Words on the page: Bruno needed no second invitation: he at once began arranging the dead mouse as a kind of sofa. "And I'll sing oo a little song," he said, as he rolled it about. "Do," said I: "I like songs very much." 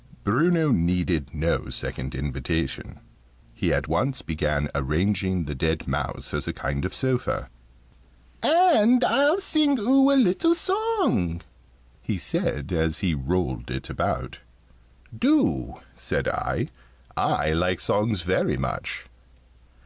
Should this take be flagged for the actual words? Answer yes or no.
no